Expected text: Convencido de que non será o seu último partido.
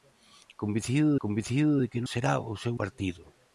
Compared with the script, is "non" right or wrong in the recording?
wrong